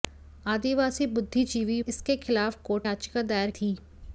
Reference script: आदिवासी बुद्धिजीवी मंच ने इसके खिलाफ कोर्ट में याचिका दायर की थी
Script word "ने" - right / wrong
wrong